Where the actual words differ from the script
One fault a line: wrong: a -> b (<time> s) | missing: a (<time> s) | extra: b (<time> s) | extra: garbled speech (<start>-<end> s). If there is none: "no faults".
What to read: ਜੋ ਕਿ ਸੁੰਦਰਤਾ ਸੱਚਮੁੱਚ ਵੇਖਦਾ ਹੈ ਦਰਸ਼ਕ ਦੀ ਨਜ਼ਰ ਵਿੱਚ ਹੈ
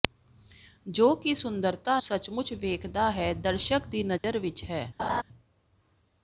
no faults